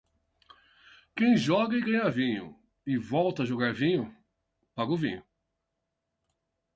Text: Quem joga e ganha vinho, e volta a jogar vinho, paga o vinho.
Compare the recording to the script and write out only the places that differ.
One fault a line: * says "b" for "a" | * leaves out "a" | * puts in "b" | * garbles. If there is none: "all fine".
all fine